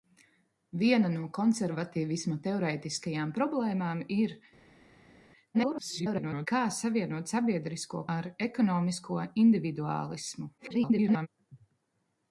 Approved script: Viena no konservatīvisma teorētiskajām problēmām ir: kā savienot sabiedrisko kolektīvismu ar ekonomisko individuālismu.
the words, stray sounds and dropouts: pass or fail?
fail